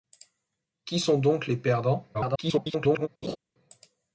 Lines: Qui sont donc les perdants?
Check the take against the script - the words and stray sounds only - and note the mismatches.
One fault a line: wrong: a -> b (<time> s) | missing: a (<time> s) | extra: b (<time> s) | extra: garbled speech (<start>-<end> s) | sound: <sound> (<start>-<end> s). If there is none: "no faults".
extra: garbled speech (2.1-3.1 s)
sound: laugh (3.2-3.4 s)